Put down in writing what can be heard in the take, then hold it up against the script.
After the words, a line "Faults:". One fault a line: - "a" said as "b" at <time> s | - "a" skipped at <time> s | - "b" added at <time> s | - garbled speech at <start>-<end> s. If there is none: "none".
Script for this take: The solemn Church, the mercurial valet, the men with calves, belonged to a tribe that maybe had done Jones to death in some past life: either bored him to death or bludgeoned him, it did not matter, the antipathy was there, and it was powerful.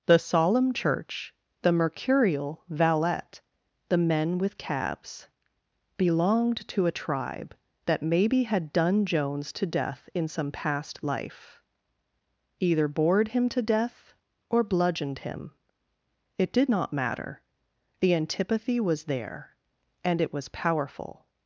The solemn Church, the mercurial valet, the men with cabs, belonged to a tribe that maybe had done Jones to death in some past life: either bored him to death or bludgeoned him, it did not matter, the antipathy was there, and it was powerful.
Faults:
- "calves" said as "cabs" at 4.6 s